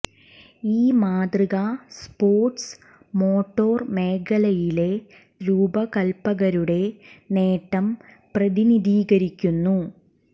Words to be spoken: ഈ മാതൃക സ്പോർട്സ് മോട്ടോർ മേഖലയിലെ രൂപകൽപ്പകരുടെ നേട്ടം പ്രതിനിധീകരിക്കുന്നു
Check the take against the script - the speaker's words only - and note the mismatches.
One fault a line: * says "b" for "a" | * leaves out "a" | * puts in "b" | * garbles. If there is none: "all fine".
all fine